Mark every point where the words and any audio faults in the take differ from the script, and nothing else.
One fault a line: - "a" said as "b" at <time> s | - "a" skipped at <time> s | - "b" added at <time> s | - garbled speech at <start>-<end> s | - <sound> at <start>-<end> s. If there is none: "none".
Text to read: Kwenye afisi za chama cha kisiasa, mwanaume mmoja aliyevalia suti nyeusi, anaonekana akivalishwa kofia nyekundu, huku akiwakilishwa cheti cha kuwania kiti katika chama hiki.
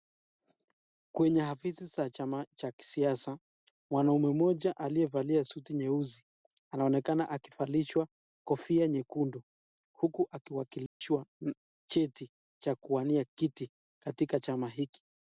- dropout at 10.9-11.0 s